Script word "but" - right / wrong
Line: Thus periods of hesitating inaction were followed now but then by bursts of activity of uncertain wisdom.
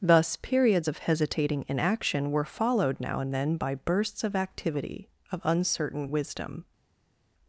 wrong